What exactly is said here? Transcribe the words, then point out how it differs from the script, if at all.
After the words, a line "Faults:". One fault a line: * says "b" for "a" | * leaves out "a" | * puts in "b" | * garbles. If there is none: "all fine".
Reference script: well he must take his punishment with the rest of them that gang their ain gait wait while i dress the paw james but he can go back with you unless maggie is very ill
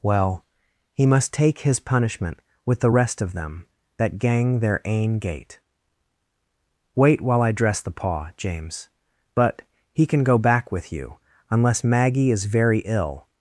well he must take his punishment with the rest of them that gang their ain gait wait while i dress the paw james but he can go back with you unless maggie is very ill
Faults:
all fine